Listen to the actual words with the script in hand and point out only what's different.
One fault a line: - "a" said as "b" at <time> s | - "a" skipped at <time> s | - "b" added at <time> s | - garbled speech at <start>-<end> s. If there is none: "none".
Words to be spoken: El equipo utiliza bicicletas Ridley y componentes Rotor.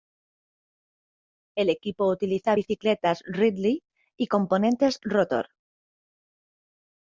none